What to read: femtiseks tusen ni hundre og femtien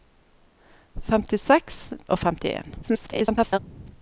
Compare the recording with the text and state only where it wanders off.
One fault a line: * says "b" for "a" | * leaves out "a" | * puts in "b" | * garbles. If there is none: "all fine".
* leaves out "tusen ni hundre"
* garbles